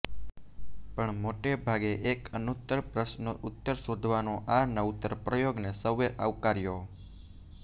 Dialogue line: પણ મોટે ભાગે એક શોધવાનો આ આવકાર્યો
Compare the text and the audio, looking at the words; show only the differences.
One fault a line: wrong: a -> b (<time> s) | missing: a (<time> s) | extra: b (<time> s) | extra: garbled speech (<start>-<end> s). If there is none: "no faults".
extra: અનુત્તર પ્રશ્નનો ઉત્તર (2.3 s)
extra: નવતર પ્રયોગને સૌએ (4.7 s)